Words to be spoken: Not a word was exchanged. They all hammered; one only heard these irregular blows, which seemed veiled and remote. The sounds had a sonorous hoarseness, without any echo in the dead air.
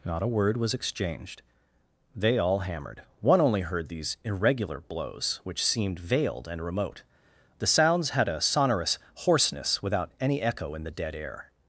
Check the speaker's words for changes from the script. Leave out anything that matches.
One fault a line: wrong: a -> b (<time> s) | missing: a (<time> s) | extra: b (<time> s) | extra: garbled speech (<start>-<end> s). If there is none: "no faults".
no faults